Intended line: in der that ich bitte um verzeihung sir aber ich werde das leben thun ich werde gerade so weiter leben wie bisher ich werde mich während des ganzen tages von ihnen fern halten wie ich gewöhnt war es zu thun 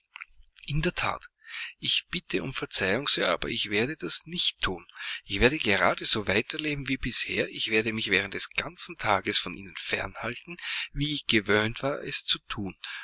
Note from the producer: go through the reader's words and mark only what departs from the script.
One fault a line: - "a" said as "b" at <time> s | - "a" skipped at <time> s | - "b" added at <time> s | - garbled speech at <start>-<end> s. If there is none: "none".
- "leben" said as "nicht" at 4.2 s